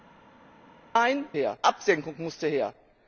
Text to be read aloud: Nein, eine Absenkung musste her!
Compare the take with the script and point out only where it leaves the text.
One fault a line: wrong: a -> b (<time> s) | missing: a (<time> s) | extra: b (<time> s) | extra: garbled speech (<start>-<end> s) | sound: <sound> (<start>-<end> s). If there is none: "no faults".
wrong: eine -> her (1.3 s)